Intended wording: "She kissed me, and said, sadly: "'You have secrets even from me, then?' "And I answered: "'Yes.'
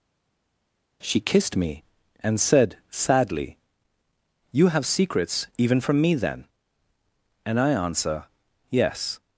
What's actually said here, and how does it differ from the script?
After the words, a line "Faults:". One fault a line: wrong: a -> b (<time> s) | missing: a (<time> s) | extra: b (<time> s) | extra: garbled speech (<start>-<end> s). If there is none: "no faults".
"She kissed me, and said, sadly: "'You have secrets even from me, then?' "And I answer: "'Yes.'
Faults:
wrong: answered -> answer (7.7 s)